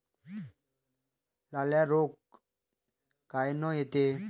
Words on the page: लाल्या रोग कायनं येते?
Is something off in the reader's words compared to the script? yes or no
no